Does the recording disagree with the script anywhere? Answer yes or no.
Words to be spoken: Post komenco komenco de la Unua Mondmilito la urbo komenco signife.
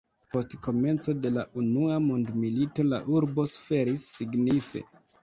yes